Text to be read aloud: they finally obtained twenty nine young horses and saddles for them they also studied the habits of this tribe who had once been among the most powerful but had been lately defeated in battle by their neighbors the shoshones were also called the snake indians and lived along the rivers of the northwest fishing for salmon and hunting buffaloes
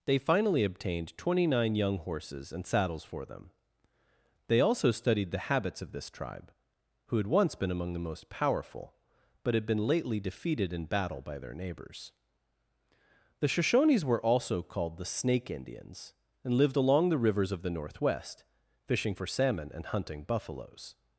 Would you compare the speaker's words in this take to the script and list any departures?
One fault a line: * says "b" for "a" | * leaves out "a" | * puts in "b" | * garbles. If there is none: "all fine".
all fine